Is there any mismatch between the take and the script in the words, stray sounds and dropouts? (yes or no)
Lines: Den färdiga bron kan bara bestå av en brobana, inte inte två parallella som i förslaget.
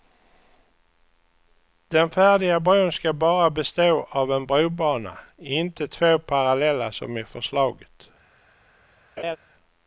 yes